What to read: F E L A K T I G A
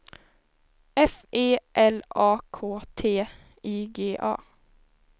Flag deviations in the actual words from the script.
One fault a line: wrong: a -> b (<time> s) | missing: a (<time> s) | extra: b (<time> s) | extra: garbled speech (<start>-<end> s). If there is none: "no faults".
no faults